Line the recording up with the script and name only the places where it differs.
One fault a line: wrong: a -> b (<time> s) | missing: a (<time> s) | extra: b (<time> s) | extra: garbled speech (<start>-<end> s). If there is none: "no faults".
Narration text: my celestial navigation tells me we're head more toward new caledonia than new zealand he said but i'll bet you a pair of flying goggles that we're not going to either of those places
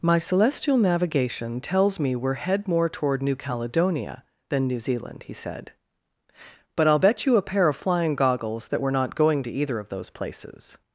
no faults